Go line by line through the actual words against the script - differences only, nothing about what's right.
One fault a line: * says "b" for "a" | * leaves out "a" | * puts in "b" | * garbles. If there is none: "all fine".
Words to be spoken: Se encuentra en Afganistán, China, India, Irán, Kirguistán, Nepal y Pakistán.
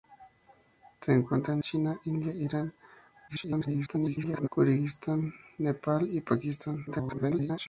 * leaves out "Afganistán"
* garbles
* garbles